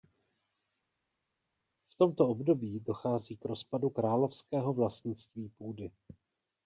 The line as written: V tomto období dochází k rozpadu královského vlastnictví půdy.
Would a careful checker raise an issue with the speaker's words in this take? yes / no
no